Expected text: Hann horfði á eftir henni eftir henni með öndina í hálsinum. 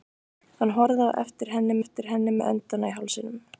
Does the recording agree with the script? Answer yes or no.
yes